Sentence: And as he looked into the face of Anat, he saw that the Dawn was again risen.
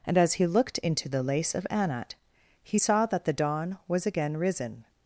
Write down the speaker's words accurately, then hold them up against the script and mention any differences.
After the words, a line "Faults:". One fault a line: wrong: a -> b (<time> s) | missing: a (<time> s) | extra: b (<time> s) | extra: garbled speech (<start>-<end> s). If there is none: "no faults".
And as he looked into the lace of Anat, he saw that the Dawn was again risen.
Faults:
wrong: face -> lace (1.2 s)